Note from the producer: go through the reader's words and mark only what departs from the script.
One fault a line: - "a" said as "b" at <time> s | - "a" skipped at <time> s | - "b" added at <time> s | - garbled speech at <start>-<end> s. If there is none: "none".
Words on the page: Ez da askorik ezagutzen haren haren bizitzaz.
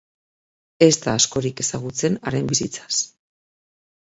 - "haren" skipped at 2.5 s